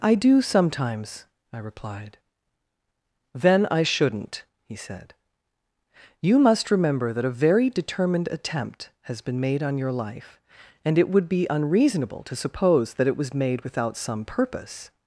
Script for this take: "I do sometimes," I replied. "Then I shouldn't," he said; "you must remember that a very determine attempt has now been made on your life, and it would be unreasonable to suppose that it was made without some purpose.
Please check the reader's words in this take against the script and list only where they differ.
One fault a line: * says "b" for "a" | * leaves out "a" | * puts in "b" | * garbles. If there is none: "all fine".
* says "determined" for "determine"
* leaves out "now"